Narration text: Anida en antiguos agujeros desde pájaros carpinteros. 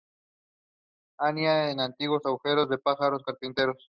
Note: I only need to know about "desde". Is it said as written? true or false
false